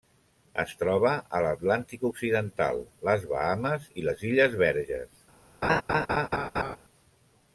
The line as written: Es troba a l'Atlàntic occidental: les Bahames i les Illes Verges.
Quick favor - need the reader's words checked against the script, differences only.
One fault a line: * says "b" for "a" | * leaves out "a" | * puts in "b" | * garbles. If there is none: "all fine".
all fine